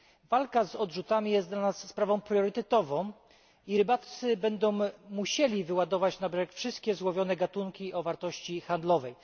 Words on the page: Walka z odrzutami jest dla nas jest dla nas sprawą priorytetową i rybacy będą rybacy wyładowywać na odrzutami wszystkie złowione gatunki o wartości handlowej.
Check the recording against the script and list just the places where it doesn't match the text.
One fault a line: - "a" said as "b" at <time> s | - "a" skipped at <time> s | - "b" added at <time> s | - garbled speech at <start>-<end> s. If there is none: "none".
- "jest dla nas" skipped at 1.9 s
- "rybacy" said as "musieli" at 5.1 s
- "odrzutami" said as "brzeg" at 6.3 s